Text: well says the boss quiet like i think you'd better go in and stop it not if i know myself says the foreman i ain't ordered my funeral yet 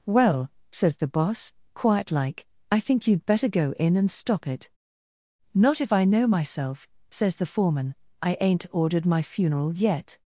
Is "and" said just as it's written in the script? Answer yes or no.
yes